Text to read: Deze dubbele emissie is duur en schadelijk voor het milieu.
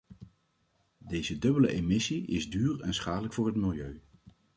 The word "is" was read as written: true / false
true